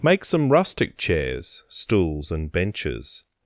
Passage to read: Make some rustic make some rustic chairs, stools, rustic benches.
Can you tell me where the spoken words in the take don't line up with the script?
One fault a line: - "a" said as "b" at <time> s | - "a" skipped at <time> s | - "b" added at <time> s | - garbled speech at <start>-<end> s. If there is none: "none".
- "make some rustic" skipped at 1.0 s
- "rustic" said as "and" at 2.3 s